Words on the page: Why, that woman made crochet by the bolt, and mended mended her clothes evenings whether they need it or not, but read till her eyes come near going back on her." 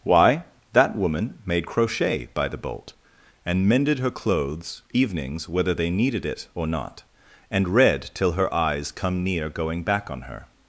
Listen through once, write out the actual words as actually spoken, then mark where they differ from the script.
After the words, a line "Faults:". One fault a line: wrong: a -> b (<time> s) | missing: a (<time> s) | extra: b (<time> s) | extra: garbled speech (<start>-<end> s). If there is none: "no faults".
Why, that woman made crochet by the bolt, and mended her clothes evenings whether they needed it or not, and read till her eyes come near going back on her."
Faults:
missing: mended (4.0 s)
wrong: need -> needed (5.9 s)
wrong: but -> and (7.5 s)